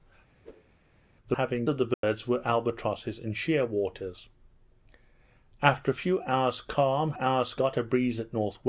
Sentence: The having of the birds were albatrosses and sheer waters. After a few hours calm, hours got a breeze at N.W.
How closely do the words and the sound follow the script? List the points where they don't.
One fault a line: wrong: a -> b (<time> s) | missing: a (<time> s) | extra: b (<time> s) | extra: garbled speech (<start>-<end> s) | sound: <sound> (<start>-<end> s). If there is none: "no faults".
sound: whoosh (0.4-0.7 s)
sound: dropout (1.9-2.0 s)